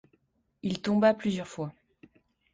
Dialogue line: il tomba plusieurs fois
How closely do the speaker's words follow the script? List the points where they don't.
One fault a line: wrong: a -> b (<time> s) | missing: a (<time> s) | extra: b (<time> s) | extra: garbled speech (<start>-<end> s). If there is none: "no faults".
no faults